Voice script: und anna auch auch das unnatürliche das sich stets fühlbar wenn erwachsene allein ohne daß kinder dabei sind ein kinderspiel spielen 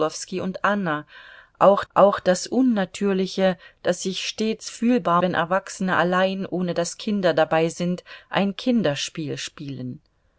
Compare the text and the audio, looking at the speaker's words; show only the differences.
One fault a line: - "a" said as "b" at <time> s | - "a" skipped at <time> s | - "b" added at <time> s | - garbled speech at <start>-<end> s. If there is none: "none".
none